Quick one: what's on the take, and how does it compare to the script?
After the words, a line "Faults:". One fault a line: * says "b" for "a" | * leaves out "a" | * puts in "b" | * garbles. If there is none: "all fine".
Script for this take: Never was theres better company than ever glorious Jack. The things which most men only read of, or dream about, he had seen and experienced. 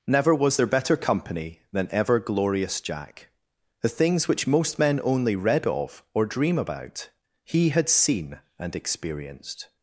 Never was there better company than ever glorious Jack. The things which most men only read of, or dream about, he had seen and experienced.
Faults:
* says "there" for "theres"